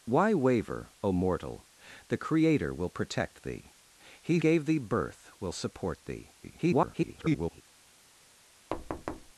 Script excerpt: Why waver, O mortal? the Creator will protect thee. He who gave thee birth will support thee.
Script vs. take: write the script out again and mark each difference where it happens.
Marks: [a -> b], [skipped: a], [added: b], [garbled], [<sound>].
Why waver, O mortal? the Creator will protect thee. He [skipped: who] gave thee birth will support thee. [garbled] [thud]